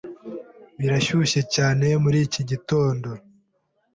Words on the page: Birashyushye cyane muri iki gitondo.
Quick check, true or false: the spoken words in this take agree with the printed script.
true